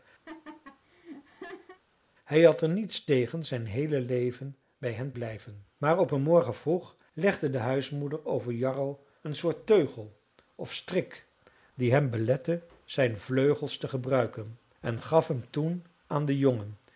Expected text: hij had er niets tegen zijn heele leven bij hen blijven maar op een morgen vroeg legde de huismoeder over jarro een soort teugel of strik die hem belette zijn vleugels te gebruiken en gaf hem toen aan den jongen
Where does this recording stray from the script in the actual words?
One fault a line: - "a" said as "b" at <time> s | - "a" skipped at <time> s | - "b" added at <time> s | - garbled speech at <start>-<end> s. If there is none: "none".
none